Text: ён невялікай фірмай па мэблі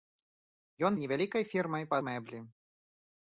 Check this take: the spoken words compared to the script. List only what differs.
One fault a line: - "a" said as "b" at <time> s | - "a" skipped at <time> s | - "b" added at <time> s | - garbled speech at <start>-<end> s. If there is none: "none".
none